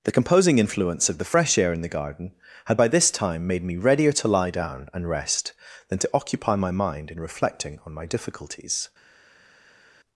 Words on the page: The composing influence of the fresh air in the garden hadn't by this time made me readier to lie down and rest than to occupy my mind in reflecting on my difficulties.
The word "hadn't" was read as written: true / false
false